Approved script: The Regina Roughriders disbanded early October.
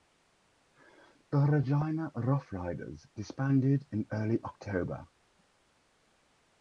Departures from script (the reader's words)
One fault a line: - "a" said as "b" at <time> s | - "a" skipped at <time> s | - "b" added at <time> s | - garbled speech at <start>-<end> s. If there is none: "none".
- "in" added at 3.9 s